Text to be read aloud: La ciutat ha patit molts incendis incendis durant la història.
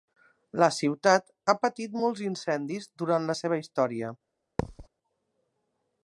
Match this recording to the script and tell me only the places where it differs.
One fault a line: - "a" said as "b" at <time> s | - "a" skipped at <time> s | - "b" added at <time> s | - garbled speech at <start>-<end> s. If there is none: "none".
- "incendis" skipped at 2.9 s
- "seva" added at 3.4 s